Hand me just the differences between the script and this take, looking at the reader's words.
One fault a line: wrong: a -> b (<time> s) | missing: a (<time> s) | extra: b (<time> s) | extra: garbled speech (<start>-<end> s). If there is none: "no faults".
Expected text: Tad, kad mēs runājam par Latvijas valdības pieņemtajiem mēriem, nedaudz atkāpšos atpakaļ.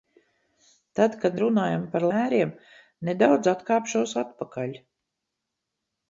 missing: mēs (1.4 s)
missing: Latvijas valdības pieņemtajiem (2.1 s)